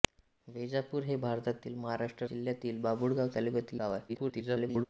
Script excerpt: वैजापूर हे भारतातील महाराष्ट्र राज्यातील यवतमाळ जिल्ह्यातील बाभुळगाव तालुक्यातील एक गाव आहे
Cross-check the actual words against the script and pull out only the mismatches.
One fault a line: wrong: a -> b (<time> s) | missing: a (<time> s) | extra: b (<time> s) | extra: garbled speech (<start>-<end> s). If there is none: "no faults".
missing: राज्यातील यवतमाळ (2.2 s)
missing: एक (3.8 s)
extra: garbled speech (4.1-4.9 s)